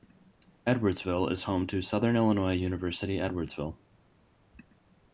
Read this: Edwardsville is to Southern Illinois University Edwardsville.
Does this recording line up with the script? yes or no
no